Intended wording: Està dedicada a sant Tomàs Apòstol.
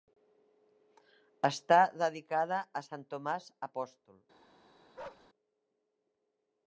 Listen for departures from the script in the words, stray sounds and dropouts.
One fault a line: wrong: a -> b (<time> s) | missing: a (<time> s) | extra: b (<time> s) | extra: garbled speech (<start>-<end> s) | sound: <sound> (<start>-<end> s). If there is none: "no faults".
sound: bark (5.0-5.3 s)